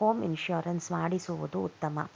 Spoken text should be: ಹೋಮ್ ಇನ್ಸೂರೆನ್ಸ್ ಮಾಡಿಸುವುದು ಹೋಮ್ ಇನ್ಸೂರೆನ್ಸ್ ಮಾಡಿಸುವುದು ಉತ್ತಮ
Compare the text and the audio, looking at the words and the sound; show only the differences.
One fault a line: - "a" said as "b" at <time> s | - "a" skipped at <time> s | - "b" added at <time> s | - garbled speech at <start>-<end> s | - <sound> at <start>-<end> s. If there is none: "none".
- "ಹೋಮ್ ಇನ್ಸೂರೆನ್ಸ್ ಮಾಡಿಸುವುದು" skipped at 1.6 s